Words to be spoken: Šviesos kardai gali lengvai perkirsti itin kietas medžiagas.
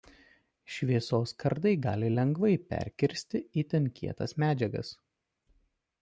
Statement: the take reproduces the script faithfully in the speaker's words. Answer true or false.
true